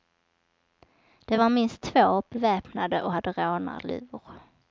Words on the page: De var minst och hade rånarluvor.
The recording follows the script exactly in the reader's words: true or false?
false